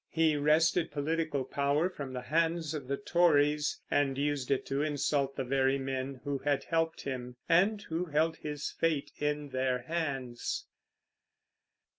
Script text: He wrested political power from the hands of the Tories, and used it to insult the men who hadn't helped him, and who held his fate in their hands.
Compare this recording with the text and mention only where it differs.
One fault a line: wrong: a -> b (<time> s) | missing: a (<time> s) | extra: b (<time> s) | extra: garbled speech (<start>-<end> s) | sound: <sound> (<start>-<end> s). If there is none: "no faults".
extra: very (5.4 s)
wrong: hadn't -> had (6.4 s)